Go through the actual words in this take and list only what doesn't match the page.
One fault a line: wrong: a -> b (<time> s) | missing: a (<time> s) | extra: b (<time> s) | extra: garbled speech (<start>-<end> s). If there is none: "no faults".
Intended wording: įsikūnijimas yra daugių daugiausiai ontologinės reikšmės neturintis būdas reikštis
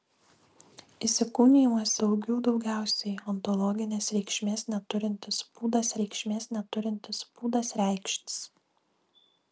missing: yra (1.9 s)
extra: reikšmės neturintis būdas (6.0 s)